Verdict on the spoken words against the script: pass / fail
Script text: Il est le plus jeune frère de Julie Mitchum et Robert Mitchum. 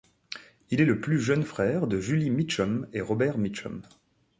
pass